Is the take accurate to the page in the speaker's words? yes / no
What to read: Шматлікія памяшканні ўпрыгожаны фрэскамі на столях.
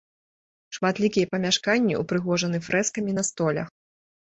yes